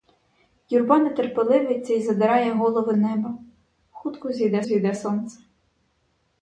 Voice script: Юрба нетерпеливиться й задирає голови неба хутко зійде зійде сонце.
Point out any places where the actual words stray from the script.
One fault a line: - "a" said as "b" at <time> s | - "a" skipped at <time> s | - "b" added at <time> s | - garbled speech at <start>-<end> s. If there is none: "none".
none